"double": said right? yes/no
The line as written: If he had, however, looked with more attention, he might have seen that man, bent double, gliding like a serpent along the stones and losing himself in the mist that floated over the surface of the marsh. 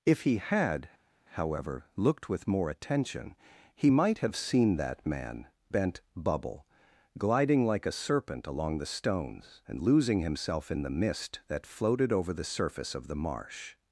no